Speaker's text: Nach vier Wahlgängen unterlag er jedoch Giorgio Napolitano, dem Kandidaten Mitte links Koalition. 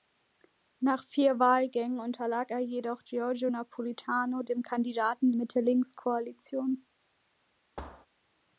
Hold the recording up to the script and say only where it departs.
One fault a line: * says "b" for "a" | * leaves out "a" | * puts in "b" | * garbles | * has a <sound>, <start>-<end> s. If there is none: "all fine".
* has a thud, 7.8-8.1 s